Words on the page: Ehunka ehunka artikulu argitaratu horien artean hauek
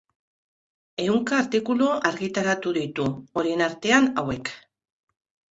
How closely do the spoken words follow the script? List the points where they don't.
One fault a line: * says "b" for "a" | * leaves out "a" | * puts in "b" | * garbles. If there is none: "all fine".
* leaves out "ehunka"
* puts in "ditu"